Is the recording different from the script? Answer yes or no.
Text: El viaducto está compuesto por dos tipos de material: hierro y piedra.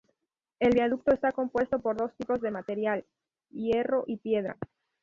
no